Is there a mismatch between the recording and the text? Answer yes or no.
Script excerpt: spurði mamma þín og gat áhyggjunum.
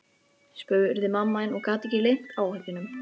yes